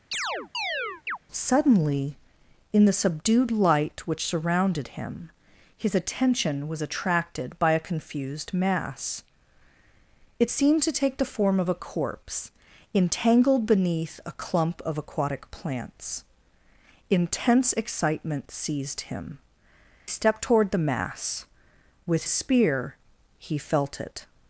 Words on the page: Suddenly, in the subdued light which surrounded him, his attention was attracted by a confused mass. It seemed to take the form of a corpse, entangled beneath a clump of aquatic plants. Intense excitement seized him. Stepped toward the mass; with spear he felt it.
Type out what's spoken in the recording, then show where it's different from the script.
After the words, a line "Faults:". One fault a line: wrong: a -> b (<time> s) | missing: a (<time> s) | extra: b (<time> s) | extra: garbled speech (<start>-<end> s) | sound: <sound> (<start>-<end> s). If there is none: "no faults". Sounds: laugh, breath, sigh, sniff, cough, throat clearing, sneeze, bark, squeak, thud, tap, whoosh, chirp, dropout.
Suddenly, in the subdued light which surrounded him, his attention was attracted by a confused mass. It seemed to take the form of a corpse, entangled beneath a clump of aquatic plants. Intense excitement seized him. Stepped toward the mass; with spear he felt it.
Faults:
sound: chirp (0.1-1.2 s)